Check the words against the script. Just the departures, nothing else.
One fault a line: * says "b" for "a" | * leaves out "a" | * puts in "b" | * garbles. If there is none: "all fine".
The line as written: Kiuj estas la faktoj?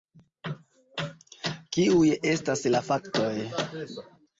all fine